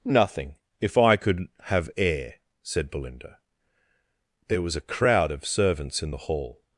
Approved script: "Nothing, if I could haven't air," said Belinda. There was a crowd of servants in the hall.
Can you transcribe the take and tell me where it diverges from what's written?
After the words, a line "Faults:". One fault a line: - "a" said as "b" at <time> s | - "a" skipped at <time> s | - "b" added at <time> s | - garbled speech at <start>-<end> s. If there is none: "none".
"Nothing, if I could have air," said Belinda. There was a crowd of servants in the hall.
Faults:
- "haven't" said as "have" at 1.6 s